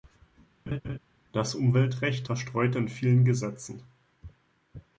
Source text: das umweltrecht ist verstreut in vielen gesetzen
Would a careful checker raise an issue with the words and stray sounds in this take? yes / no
yes